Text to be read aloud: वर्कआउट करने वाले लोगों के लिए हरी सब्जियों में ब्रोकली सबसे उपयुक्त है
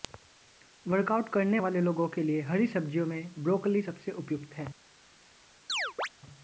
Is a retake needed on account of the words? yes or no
no